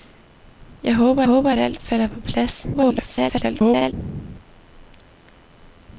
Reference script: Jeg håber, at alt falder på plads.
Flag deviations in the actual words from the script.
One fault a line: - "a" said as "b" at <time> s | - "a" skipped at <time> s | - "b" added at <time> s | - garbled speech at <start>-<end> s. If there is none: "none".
- "håber" added at 1.2 s
- garbled speech at 2.7-3.9 s